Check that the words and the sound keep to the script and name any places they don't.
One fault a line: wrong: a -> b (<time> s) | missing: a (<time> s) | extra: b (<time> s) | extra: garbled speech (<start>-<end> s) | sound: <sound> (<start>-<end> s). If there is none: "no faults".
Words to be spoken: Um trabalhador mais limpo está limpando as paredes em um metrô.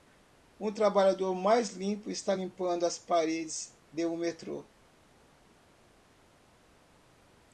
wrong: em -> de (3.9 s)